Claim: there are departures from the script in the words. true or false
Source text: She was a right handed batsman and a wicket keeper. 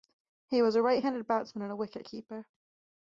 true